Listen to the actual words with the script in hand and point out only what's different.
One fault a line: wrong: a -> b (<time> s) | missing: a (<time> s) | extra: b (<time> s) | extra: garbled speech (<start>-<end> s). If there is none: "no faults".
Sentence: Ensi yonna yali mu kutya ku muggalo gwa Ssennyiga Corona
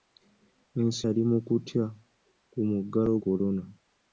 missing: yonna (1.0 s)
missing: gwa Ssennyiga (3.1 s)